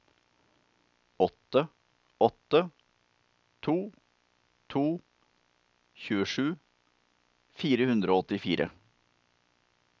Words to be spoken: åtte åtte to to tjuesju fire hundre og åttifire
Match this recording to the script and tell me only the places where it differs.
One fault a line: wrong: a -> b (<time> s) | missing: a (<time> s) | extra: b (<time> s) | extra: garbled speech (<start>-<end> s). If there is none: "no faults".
no faults